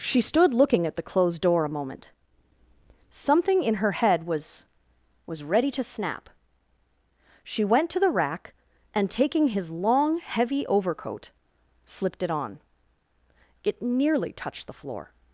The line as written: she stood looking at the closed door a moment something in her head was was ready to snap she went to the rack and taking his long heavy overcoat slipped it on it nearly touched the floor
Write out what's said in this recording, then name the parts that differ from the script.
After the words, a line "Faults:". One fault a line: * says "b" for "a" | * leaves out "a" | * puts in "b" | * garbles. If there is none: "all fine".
she stood looking at the closed door a moment something in her head was was ready to snap she went to the rack and taking his long heavy overcoat slipped it on it nearly touched the floor
Faults:
all fine